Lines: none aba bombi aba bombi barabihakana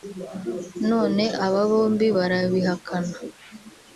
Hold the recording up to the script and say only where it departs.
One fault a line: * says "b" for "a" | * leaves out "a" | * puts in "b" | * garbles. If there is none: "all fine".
* leaves out "aba bombi"